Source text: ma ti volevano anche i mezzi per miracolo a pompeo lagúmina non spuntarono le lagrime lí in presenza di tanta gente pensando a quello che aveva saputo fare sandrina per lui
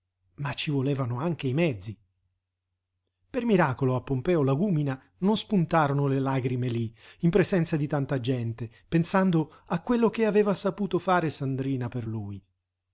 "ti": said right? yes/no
no